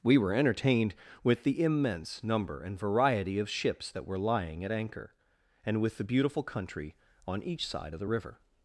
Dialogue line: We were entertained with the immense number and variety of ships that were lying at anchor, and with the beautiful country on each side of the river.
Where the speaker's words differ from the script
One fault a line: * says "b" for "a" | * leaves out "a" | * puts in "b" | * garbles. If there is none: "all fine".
all fine